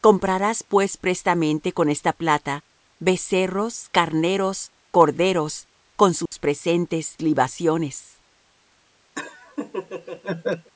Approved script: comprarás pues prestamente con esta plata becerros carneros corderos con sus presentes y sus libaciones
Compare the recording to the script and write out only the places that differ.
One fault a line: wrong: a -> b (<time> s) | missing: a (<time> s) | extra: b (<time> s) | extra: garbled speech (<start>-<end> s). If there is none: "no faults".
missing: y sus (7.2 s)